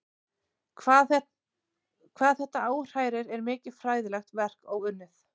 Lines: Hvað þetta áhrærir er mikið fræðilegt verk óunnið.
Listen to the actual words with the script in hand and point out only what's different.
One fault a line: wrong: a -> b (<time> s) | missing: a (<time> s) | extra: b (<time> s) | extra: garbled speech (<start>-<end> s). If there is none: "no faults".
no faults